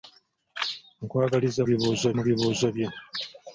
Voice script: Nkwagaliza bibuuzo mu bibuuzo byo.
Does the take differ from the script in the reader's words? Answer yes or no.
no